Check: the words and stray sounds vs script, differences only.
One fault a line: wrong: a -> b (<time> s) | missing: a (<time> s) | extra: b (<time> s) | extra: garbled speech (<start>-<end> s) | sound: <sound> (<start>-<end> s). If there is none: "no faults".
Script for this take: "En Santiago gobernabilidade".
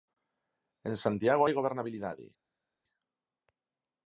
extra: hai (1.4 s)